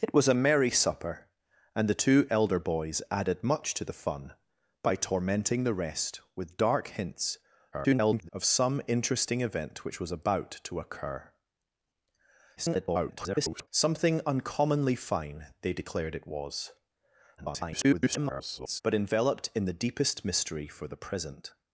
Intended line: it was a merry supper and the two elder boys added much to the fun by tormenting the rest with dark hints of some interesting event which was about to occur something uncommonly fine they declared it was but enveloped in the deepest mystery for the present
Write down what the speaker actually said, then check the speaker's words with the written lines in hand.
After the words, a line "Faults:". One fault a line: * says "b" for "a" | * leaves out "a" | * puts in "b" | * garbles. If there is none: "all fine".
it was a merry supper and the two elder boys added much to the fun by tormenting the rest with dark hints [garbled] of some interesting event which was about to occur [garbled] something uncommonly fine they declared it was [garbled] but enveloped in the deepest mystery for the present
Faults:
* garbles
* garbles
* garbles